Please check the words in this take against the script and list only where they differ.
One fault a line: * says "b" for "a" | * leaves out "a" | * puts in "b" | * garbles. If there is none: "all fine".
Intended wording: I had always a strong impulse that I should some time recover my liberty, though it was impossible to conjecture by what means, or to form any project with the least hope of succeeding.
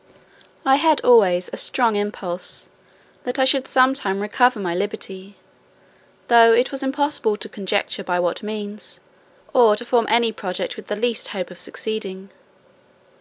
all fine